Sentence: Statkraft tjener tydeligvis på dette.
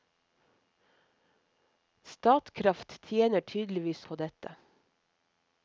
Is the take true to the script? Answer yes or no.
yes